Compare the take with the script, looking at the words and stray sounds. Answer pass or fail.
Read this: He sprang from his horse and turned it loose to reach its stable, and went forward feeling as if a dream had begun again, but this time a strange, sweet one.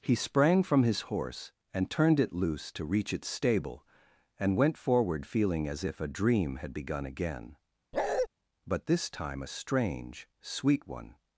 fail